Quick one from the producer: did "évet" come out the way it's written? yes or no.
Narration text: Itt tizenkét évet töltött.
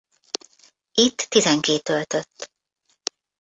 no